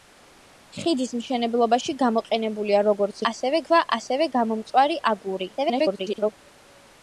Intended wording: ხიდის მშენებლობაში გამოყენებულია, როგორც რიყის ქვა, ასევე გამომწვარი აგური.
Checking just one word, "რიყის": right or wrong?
wrong